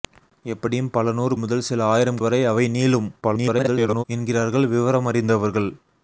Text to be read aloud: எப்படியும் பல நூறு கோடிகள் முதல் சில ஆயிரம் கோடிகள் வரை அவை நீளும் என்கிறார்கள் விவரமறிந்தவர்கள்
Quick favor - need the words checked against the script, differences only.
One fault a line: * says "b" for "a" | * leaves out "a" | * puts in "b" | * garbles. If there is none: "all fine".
* leaves out "கோடிகள்"
* leaves out "கோடிகள்"
* garbles